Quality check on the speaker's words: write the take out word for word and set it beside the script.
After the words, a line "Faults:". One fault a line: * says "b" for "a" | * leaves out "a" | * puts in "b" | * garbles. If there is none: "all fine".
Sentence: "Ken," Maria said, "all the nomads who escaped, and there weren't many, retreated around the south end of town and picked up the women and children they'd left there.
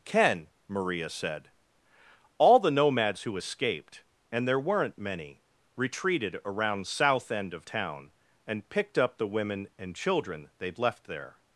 "Ken," Maria said, "all the nomads who escaped, and there weren't many, retreated around south end of town and picked up the women and children they'd left there.
Faults:
* leaves out "the"